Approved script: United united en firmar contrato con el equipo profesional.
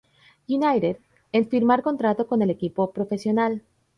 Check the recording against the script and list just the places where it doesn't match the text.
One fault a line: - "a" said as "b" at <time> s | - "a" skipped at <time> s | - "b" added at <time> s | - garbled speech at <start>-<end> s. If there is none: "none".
- "united" skipped at 1.0 s